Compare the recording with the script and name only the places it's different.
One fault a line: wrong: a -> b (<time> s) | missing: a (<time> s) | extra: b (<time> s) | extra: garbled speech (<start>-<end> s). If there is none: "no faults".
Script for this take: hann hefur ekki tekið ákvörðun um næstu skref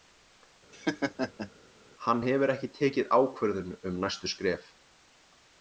no faults